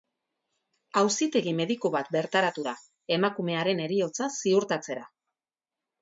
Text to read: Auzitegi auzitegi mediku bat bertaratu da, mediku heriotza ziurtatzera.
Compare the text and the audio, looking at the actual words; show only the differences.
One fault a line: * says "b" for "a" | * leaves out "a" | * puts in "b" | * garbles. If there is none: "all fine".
* leaves out "auzitegi"
* says "emakumearen" for "mediku"